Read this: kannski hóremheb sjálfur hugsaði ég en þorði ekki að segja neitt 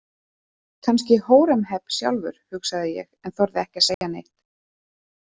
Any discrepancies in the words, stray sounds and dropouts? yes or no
yes